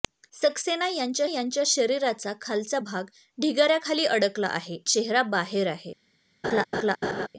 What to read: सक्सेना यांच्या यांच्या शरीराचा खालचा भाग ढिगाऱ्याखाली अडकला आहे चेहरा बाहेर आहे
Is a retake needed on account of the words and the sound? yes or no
yes